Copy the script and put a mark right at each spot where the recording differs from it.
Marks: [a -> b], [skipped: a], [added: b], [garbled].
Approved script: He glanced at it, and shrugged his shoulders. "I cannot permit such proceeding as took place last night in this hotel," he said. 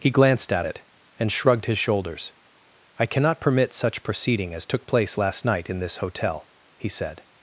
He glanced at it, and shrugged his shoulders. "I cannot permit such proceeding as took place last night in this hotel," he said.